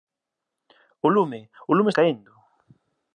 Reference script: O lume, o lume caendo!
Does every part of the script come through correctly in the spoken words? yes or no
yes